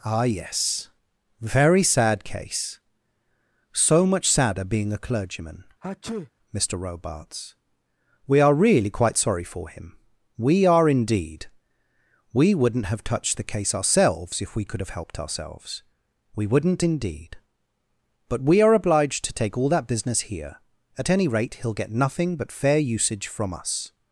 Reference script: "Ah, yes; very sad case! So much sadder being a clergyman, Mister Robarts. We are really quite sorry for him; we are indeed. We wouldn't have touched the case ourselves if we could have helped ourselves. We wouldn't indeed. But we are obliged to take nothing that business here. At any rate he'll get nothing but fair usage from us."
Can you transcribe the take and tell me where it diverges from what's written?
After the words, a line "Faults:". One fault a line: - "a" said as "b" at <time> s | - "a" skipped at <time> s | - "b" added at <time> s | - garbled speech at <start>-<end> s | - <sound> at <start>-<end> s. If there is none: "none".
"Ah, yes; very sad case! So much sadder being a clergyman, Mister Robarts. We are really quite sorry for him; we are indeed. We wouldn't have touched the case ourselves if we could have helped ourselves. We wouldn't indeed. But we are obliged to take all that business here. At any rate he'll get nothing but fair usage from us."
Faults:
- sneeze at 5.8-6.3 s
- "nothing" said as "all" at 19.6 s